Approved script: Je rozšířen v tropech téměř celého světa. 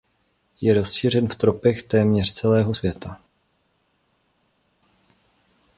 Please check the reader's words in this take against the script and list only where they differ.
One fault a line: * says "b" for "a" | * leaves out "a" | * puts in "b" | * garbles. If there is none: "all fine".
all fine